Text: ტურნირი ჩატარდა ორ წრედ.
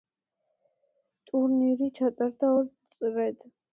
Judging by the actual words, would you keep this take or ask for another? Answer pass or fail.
pass